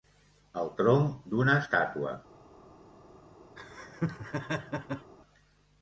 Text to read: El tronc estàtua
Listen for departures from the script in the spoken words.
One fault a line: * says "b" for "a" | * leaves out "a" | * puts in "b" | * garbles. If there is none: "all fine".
* puts in "d'una"